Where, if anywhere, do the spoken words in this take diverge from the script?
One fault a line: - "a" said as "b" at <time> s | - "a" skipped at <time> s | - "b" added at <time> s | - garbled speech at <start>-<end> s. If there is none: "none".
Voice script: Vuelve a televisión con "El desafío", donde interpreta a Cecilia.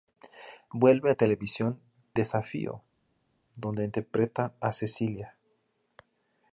- "con El" skipped at 1.8 s